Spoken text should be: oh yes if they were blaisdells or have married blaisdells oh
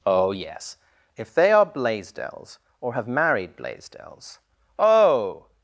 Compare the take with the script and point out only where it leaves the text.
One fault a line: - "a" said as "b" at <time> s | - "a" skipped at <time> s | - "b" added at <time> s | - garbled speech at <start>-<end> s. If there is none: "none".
- "were" said as "are" at 1.5 s